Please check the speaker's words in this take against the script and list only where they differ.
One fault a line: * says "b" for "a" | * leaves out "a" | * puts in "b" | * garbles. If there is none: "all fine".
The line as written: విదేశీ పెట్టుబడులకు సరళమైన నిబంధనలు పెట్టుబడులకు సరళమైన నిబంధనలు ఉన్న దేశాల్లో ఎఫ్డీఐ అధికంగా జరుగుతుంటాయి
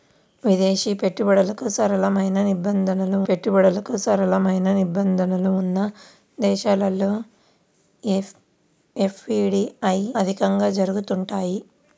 all fine